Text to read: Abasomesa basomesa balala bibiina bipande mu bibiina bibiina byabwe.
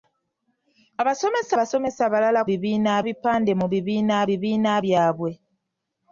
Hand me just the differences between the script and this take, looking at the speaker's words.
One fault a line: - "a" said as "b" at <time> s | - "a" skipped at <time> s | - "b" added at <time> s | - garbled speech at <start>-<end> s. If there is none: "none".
none